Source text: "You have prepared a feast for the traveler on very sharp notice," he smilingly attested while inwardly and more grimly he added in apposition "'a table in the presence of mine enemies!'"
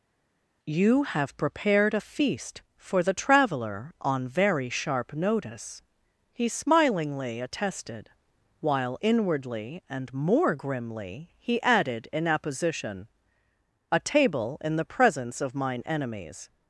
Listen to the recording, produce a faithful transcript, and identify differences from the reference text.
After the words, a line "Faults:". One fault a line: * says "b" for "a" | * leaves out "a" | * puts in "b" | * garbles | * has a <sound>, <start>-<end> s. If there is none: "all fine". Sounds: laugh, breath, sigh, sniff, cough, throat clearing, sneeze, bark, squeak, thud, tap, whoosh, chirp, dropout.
"You have prepared a feast for the traveler on very sharp notice," he smilingly attested while inwardly and more grimly he added in apposition "'a table in the presence of mine enemies!'"
Faults:
all fine